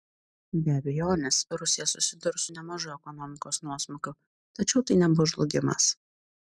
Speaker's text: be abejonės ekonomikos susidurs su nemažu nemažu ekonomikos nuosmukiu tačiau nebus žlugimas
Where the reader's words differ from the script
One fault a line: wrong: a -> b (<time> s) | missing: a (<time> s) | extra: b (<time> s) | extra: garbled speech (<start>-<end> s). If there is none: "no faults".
wrong: ekonomikos -> rusija (1.6 s)
missing: nemažu (2.9 s)
extra: tai (4.9 s)